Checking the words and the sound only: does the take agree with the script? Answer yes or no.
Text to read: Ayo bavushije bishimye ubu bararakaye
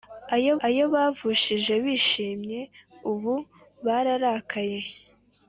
no